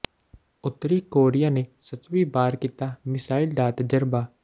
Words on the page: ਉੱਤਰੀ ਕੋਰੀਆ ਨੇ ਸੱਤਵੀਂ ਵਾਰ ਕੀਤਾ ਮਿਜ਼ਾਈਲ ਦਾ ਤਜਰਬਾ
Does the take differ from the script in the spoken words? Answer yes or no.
no